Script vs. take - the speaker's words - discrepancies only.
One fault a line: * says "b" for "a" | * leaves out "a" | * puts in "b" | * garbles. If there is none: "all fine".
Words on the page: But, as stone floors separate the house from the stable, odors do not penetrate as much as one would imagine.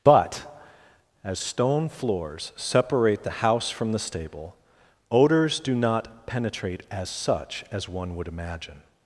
* says "such" for "much"